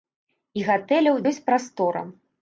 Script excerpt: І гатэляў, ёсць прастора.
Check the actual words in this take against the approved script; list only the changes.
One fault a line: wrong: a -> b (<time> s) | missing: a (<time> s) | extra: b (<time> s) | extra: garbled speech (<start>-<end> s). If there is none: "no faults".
no faults